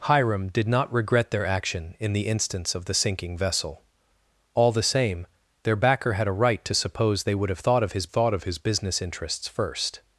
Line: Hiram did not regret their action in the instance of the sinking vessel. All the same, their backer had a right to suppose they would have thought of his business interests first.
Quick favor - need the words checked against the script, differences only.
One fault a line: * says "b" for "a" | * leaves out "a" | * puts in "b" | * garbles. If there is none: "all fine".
* puts in "thought of his"